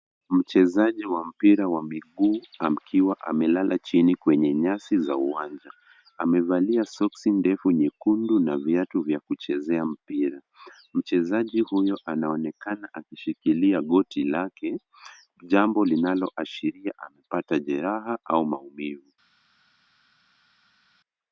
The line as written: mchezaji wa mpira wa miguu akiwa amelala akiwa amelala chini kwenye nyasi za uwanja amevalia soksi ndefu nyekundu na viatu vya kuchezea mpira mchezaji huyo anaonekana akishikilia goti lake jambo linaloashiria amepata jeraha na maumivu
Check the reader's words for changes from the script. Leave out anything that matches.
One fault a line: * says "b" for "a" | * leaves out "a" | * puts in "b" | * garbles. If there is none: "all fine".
* leaves out "akiwa amelala"
* says "au" for "na"